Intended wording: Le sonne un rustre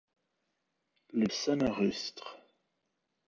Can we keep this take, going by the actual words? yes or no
yes